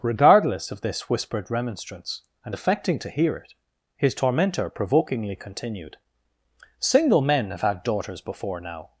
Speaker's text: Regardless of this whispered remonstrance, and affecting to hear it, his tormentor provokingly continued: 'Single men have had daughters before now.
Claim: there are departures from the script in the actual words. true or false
false